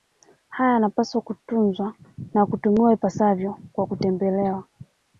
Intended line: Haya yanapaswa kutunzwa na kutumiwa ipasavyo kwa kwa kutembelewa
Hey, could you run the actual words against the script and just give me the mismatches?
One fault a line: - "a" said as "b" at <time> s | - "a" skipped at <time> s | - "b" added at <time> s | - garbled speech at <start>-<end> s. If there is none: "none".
- "kwa" skipped at 3.9 s